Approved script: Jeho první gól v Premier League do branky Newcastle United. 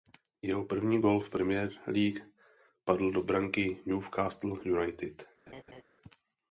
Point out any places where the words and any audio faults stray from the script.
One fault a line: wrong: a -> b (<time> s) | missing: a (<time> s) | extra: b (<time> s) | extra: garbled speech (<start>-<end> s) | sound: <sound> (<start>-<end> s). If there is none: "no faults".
extra: padl (2.8 s)
sound: laugh (5.5-5.8 s)